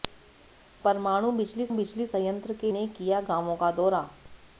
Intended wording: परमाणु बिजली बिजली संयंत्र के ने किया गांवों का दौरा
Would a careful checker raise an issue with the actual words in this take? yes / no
no